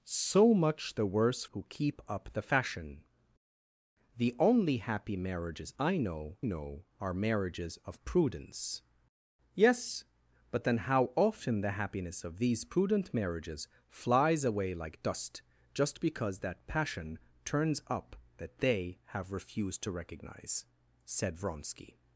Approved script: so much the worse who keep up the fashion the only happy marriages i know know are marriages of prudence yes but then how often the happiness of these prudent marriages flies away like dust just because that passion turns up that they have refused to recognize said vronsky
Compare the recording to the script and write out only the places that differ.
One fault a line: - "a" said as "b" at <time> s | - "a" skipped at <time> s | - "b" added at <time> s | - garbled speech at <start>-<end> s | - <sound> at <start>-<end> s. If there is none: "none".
none